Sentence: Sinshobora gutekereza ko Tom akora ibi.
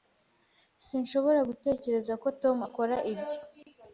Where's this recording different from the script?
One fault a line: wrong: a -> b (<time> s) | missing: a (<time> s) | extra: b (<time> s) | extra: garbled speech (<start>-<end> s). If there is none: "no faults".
wrong: ibi -> ibyo (3.1 s)